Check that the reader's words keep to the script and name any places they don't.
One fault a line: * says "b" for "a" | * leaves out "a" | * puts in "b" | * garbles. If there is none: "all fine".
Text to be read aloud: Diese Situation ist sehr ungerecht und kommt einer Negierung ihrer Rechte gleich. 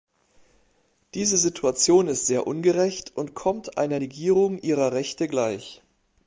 all fine